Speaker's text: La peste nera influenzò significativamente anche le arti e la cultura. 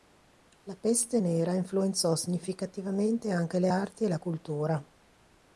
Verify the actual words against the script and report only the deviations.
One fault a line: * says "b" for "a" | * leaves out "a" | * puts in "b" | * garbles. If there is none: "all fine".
all fine